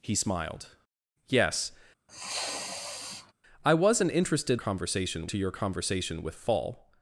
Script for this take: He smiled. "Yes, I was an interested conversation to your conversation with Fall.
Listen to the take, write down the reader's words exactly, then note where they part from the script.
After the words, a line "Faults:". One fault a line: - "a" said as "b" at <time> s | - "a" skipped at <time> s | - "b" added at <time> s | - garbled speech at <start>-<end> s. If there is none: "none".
He smiled. "Yes, I was an interested conversation to your conversation with Fall.
Faults:
none